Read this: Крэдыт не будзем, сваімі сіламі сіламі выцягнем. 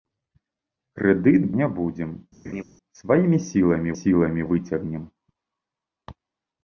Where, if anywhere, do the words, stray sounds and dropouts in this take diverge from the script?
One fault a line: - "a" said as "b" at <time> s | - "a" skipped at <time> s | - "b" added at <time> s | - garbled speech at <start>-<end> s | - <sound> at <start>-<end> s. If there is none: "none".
- laugh at 2.4-2.6 s